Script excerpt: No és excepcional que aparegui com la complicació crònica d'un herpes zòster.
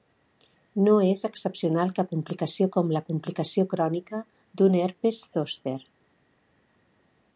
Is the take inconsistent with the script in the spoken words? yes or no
yes